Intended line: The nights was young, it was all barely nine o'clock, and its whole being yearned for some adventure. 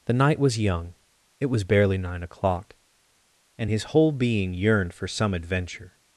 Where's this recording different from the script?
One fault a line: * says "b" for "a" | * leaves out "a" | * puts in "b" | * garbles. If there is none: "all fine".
* says "night" for "nights"
* leaves out "all"
* says "his" for "its"